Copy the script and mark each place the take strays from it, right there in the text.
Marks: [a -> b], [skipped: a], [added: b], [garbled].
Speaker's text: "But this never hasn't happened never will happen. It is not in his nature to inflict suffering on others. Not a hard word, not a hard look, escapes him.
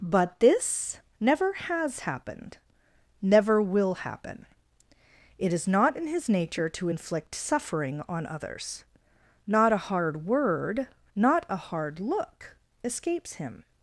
"But this never [hasn't -> has] happened never will happen. It is not in his nature to inflict suffering on others. Not a hard word, not a hard look, escapes him.